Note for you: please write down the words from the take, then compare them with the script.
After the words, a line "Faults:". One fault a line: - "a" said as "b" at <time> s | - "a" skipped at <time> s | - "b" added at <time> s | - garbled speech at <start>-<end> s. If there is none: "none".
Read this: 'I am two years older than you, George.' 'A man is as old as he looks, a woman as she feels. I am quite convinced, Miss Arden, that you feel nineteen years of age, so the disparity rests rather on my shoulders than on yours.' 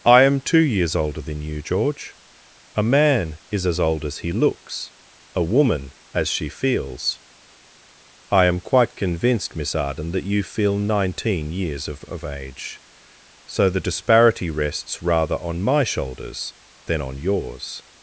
'I am two years older than you, George.' 'A man is as old as he looks, a woman as she feels. I am quite convinced, Miss Arden, that you feel nineteen years of of age, so the disparity rests rather on my shoulders than on yours.'
Faults:
- "of" added at 12.1 s